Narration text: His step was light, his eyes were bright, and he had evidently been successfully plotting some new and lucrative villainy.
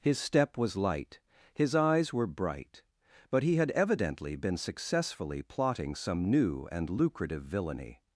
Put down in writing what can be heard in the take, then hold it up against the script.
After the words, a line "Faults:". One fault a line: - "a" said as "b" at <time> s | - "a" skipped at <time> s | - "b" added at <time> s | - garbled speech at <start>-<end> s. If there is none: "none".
His step was light, his eyes were bright, but he had evidently been successfully plotting some new and lucrative villainy.
Faults:
- "and" said as "but" at 3.3 s